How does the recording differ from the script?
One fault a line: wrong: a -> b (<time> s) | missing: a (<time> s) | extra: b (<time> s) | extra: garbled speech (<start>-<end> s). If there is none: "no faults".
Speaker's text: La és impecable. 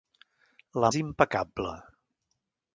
no faults